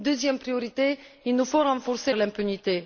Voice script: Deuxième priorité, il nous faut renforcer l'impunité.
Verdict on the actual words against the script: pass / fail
pass